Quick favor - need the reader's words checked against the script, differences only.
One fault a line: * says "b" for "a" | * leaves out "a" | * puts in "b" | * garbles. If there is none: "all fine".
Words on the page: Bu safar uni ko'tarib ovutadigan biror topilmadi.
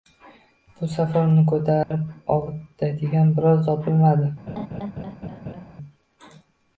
all fine